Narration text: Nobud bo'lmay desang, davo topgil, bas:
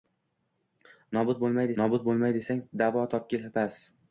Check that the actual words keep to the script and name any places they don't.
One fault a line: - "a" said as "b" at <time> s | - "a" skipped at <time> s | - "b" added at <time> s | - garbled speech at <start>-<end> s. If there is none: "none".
- "nobud bo'lmay" added at 1.8 s